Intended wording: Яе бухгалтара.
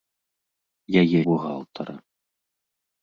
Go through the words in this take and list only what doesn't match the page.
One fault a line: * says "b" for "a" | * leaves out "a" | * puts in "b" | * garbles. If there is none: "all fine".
all fine